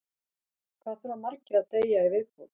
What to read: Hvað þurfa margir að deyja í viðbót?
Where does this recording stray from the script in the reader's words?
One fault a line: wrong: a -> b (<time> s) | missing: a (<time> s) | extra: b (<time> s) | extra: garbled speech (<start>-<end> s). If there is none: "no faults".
no faults